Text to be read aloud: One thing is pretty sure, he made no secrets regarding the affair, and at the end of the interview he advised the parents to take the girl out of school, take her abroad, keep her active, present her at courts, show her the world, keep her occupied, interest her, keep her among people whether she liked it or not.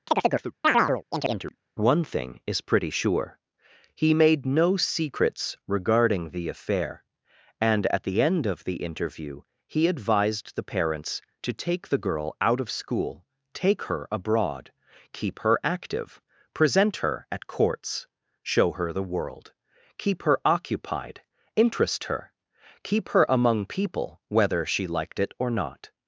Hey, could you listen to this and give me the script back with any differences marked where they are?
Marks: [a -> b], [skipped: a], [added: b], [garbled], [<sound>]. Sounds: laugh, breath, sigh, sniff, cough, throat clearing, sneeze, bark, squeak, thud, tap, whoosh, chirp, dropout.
[chirp] One thing is pretty sure, he made no secrets regarding the affair, and at the end of the interview he advised the parents to take the girl out of school, take her abroad, keep her active, present her at courts, show her the world, keep her occupied, interest her, keep her among people whether she liked it or not.